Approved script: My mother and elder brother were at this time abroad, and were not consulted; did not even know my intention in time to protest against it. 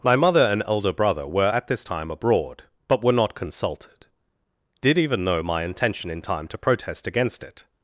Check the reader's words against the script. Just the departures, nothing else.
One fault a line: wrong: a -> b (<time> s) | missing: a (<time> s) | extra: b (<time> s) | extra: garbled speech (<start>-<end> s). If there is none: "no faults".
wrong: and -> but (2.9 s)
missing: not (5.0 s)